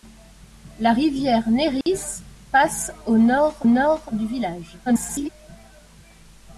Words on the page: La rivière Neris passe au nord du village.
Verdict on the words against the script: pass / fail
fail